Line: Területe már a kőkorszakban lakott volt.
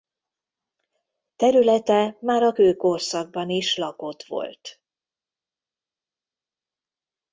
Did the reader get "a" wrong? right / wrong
right